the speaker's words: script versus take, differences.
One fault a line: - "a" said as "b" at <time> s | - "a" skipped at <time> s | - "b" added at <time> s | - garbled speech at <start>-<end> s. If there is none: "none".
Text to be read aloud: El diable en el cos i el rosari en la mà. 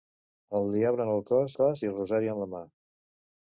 - "cos" added at 1.6 s